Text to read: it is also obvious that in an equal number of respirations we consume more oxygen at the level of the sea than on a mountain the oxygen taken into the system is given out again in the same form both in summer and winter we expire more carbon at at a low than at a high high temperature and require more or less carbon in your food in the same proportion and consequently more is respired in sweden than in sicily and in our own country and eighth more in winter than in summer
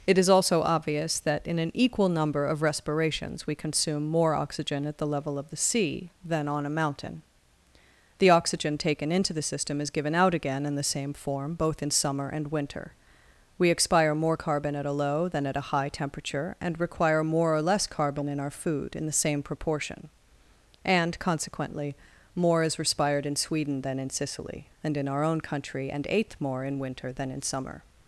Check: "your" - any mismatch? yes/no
yes